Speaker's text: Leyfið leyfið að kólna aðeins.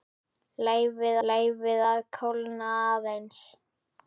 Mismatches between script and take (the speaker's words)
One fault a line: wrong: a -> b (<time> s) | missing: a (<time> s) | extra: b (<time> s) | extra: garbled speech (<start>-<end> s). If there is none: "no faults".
no faults